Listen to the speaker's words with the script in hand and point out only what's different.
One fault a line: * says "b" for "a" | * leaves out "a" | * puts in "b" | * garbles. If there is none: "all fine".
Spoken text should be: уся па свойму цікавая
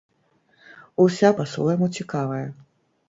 all fine